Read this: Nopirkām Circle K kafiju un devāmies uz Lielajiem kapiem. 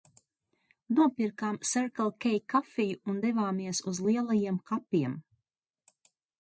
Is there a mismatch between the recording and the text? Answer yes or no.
no